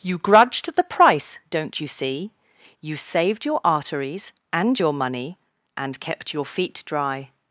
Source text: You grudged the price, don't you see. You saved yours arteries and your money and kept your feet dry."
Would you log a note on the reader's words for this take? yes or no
yes